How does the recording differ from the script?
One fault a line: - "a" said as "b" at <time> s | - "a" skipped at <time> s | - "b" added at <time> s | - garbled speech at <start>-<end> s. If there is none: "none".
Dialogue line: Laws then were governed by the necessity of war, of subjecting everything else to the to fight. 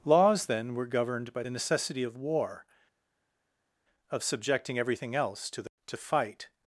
none